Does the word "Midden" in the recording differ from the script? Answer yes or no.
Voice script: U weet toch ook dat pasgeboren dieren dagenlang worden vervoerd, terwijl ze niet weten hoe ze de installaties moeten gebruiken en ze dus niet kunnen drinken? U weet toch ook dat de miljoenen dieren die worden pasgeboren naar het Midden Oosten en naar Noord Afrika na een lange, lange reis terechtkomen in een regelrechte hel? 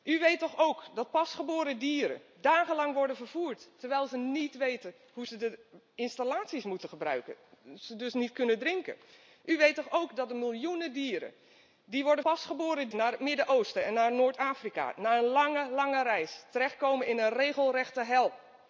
no